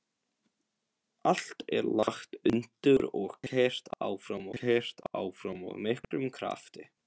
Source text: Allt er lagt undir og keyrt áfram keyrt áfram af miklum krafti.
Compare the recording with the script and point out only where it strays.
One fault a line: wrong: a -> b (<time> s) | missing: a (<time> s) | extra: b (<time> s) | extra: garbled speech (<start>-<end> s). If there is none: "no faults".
no faults